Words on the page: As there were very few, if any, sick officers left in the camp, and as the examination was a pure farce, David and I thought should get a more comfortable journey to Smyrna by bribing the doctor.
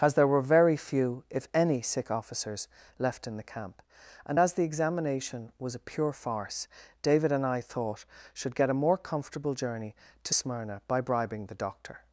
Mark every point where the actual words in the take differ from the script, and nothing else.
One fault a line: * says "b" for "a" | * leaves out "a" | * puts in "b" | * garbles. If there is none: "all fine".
all fine